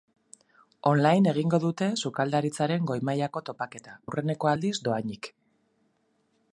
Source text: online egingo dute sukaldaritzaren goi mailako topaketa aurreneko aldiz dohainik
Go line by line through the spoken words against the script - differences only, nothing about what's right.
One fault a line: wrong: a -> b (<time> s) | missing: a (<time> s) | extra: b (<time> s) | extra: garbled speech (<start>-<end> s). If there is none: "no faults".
no faults